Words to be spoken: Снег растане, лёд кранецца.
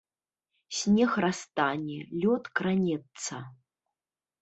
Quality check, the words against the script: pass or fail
pass